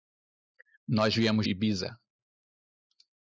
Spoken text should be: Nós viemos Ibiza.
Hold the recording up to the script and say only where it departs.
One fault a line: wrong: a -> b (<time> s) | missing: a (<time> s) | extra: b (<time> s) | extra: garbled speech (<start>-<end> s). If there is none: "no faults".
no faults